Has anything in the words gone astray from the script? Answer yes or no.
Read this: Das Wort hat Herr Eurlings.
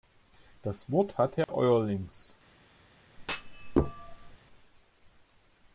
no